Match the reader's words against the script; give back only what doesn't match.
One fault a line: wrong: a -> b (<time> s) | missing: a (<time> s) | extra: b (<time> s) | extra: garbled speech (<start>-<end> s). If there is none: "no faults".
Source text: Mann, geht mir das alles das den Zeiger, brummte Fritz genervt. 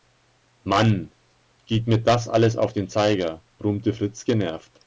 wrong: das -> auf (2.6 s)